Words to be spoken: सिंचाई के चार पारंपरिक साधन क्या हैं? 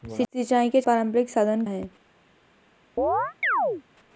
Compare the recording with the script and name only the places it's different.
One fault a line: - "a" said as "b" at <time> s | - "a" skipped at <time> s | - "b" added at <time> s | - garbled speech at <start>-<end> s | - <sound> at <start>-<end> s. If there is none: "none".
- "चार" skipped at 0.8 s
- "क्या" skipped at 1.6 s
- chirp at 3.0-3.8 s